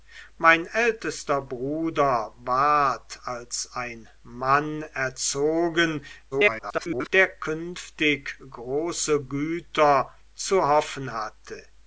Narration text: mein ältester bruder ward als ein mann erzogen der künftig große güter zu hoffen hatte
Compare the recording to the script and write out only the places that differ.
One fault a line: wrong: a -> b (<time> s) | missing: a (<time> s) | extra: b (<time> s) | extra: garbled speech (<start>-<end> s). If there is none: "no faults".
extra: garbled speech (6.3-7.1 s)